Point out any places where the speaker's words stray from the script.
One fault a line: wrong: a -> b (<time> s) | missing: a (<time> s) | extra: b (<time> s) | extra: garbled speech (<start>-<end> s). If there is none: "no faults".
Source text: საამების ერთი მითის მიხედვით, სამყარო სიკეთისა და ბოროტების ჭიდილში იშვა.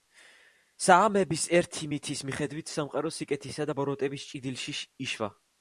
no faults